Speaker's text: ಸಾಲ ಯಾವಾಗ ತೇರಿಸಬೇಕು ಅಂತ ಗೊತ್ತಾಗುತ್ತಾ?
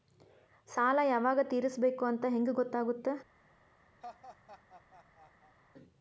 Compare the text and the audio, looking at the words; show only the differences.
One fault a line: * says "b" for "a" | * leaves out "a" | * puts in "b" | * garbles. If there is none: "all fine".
* puts in "ಹೆಂಗ್"